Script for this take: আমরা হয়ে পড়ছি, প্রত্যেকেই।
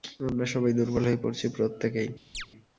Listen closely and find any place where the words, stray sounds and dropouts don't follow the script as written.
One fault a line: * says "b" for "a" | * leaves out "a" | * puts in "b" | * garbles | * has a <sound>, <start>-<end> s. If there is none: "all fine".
* puts in "সবাই দুর্বল"
* has a chirp, 2.3-2.5 s